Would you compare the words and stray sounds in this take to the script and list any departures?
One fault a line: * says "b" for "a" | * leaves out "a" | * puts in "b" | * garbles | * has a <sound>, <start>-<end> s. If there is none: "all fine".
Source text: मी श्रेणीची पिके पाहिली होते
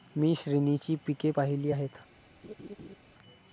* says "आहेत" for "होते"
* has a laugh, 2.4-3.0 s